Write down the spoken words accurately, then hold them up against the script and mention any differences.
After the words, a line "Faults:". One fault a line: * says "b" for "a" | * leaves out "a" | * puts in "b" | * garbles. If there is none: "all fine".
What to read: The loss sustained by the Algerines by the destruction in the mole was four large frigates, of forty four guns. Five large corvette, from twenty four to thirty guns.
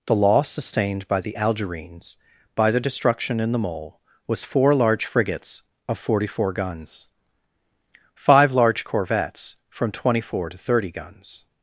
The loss sustained by the Algerines by the destruction in the mole was four large frigates, of forty four guns. Five large corvettes, from twenty four to thirty guns.
Faults:
* says "corvettes" for "corvette"